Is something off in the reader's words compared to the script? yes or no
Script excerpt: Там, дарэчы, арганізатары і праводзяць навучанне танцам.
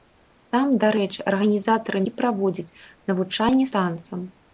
no